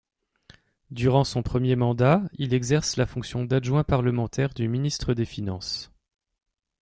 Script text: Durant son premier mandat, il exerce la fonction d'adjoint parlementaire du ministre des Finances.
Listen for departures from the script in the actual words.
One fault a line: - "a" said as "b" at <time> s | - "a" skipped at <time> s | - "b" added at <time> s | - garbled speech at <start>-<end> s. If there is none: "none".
none